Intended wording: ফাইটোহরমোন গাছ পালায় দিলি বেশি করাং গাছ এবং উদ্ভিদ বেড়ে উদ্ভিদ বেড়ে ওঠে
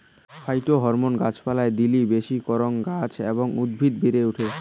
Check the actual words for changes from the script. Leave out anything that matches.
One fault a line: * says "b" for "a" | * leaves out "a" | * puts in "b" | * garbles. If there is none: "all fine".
* leaves out "উদ্ভিদ বেড়ে"